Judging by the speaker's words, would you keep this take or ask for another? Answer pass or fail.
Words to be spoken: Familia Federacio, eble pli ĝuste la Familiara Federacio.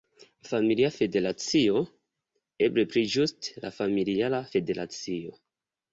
pass